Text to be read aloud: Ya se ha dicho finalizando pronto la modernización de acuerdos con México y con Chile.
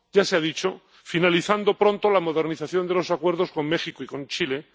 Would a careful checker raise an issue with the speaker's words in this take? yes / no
yes